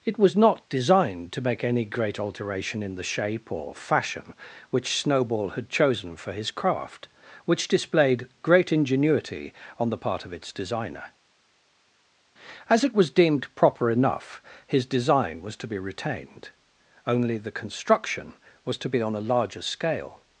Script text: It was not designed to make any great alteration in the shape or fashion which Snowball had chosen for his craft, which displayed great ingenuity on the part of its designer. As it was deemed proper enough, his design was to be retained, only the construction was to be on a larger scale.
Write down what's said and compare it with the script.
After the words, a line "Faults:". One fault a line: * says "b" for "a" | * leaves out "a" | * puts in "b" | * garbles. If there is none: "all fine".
It was not designed to make any great alteration in the shape or fashion which Snowball had chosen for his craft, which displayed great ingenuity on the part of its designer. As it was deemed proper enough, his design was to be retained, only the construction was to be on a larger scale.
Faults:
all fine